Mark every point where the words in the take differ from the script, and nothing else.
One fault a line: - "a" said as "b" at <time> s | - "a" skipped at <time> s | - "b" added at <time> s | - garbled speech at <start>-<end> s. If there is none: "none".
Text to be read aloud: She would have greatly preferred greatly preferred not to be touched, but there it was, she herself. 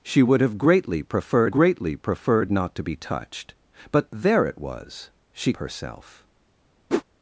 none